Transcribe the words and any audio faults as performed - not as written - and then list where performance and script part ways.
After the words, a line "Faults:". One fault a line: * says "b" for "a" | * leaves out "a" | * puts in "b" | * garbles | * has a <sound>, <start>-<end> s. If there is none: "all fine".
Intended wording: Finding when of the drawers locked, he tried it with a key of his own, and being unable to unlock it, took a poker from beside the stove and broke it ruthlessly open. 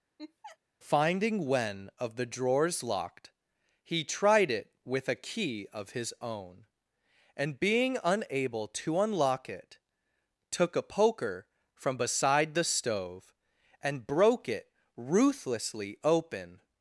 Finding when of the drawers locked, he tried it with a key of his own, and being unable to unlock it, took a poker from beside the stove and broke it ruthlessly open.
Faults:
* has a laugh, 0.2-0.6 s